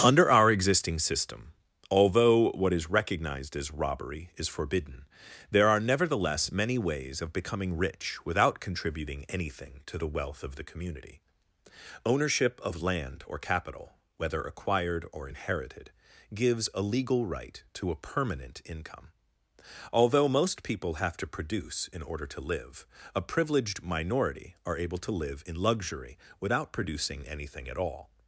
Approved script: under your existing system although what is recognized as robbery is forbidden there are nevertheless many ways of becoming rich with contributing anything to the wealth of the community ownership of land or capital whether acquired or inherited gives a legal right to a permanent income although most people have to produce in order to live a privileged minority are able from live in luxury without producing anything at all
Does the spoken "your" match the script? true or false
false